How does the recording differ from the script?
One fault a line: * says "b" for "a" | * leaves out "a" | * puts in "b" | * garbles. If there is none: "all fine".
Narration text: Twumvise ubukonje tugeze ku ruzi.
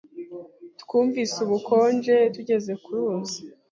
all fine